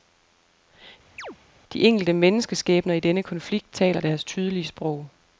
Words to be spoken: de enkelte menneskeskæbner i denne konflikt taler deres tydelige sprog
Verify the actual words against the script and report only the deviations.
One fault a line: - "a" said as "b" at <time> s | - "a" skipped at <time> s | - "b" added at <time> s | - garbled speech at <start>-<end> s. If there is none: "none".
none